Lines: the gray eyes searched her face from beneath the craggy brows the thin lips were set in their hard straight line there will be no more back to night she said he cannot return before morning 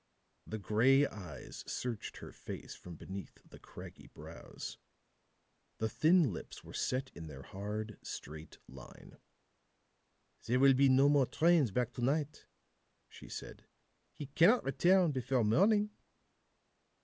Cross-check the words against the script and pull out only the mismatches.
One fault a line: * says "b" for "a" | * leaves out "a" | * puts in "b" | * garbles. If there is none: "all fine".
* puts in "trains"